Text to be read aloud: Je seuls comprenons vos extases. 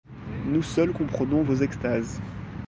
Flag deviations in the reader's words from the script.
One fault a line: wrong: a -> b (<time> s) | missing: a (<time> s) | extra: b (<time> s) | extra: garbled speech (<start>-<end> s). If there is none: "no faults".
wrong: Je -> Nous (0.5 s)